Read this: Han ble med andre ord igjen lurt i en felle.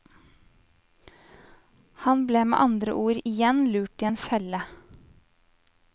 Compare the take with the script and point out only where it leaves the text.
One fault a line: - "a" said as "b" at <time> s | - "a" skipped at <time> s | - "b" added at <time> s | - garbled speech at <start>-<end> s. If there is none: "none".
none